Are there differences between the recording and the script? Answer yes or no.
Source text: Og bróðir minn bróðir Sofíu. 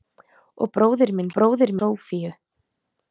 no